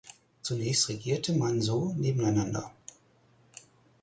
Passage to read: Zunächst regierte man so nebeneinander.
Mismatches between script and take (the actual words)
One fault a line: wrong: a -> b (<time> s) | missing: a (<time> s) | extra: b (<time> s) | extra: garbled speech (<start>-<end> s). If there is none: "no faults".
no faults